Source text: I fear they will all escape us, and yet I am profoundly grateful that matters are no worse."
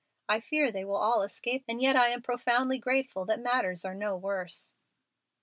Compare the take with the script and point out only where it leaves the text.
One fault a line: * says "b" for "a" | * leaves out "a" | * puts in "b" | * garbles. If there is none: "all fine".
* leaves out "us"